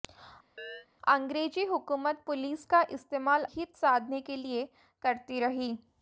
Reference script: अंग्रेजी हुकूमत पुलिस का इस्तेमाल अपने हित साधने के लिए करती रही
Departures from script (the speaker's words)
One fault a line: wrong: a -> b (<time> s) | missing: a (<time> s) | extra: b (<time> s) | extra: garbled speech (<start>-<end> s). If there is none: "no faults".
missing: अपने (3.4 s)